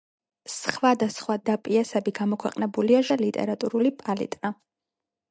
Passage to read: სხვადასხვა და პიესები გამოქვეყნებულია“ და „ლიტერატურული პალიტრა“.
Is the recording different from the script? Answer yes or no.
no